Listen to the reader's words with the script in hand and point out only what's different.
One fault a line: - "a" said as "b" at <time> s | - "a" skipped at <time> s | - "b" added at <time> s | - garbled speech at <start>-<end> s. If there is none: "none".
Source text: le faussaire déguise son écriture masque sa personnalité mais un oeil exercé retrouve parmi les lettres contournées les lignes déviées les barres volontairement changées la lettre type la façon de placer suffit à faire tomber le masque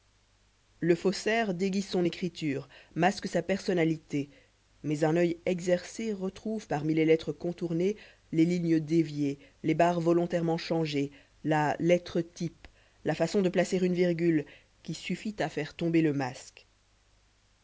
- "une virgule qui" added at 13.8 s